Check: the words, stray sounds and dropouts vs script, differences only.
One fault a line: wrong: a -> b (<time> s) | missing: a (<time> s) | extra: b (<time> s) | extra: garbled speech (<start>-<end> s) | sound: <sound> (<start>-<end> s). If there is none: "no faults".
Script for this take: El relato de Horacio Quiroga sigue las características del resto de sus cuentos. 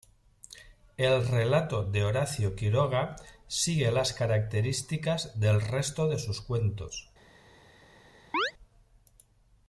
sound: chirp (8.3-8.5 s)